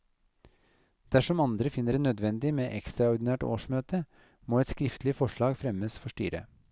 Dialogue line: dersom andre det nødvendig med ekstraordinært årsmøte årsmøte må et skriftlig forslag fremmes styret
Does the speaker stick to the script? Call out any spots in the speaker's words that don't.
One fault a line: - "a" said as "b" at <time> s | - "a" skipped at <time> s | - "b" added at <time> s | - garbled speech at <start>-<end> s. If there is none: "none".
- "finner" added at 1.7 s
- "årsmøte" skipped at 4.1 s
- "for" added at 6.0 s